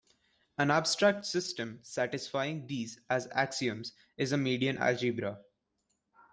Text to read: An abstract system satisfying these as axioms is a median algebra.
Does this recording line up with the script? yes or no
yes